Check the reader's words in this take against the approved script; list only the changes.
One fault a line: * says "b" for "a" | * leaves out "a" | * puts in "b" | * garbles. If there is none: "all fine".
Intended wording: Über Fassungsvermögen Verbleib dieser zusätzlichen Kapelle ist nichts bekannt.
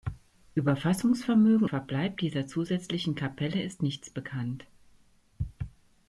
all fine